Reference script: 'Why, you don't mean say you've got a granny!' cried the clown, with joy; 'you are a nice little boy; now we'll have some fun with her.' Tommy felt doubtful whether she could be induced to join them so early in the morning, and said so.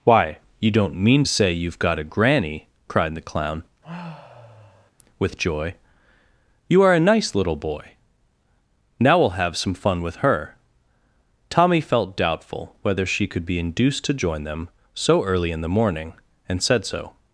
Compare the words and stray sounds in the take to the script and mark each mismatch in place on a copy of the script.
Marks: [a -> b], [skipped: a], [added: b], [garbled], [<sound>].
'Why, you don't mean say you've got a granny!' cried the clown, [sigh] with joy; 'you are a nice little boy; now we'll have some fun with her.' Tommy felt doubtful whether she could be induced to join them so early in the morning, and said so.